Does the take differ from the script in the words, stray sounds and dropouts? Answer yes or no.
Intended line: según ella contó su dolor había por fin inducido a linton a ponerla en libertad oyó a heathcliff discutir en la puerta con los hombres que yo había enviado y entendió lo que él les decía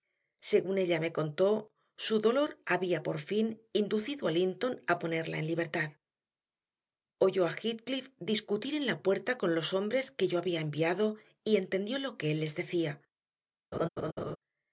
yes